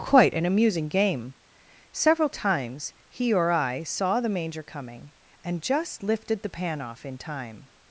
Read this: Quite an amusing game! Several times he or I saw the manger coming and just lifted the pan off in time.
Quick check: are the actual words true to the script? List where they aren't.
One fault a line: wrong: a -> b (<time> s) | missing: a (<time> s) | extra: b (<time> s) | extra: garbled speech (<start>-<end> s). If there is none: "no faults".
no faults